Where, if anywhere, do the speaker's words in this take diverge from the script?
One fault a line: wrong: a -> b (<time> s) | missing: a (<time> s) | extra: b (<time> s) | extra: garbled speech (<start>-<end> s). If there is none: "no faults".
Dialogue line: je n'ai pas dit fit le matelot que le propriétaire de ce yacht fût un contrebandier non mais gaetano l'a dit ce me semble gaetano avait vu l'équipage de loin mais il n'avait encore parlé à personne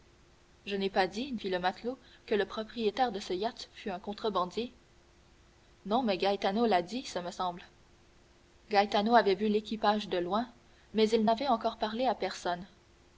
no faults